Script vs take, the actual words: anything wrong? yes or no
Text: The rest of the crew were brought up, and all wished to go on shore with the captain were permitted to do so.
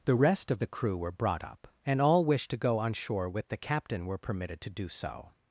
no